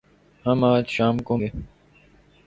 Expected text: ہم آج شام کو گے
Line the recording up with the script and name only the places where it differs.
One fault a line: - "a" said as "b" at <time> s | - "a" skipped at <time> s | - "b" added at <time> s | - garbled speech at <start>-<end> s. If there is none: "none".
none